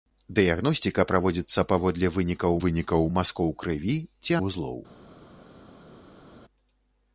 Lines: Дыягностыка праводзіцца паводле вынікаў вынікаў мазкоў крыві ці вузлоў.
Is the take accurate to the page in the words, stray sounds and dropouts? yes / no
yes